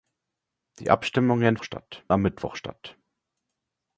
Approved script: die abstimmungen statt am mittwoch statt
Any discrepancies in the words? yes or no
no